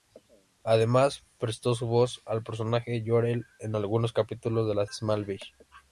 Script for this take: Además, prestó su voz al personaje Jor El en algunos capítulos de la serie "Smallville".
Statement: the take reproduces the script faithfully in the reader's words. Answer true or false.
false